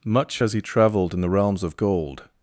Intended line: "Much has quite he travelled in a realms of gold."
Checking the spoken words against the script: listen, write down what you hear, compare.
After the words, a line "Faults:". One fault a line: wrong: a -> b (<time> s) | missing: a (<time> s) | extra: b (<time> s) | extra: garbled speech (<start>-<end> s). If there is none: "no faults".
"Much has he travelled in the realms of gold."
Faults:
missing: quite (0.5 s)
wrong: a -> the (1.2 s)